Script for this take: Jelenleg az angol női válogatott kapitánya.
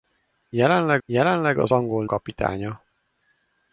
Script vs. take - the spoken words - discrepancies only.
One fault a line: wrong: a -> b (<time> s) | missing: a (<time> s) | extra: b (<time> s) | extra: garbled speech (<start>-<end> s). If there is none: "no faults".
extra: jelenleg (1.1 s)
missing: női válogatott (2.1 s)